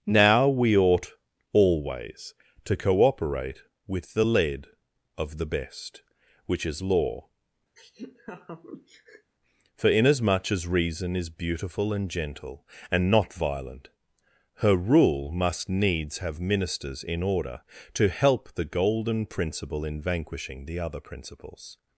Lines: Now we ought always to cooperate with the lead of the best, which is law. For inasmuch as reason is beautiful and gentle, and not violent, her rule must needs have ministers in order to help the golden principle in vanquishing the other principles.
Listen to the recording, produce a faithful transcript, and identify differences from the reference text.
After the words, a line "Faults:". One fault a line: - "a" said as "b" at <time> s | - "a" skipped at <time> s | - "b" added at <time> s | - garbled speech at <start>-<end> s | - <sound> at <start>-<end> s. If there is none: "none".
Now we ought always to cooperate with the lead of the best, which is law. For inasmuch as reason is beautiful and gentle, and not violent, her rule must needs have ministers in order to help the golden principle in vanquishing the other principles.
Faults:
- laugh at 7.8-9.3 s